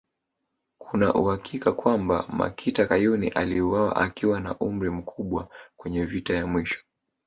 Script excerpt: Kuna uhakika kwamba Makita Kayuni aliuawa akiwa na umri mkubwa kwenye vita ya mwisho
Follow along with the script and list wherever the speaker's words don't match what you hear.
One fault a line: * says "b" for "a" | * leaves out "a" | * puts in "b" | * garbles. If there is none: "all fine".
all fine